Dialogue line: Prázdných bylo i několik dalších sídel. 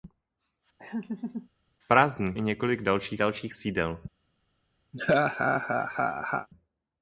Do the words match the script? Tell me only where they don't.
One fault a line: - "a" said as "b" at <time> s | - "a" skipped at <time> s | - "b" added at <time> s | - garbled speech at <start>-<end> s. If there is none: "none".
- "bylo" skipped at 2.4 s
- "dalších" added at 3.2 s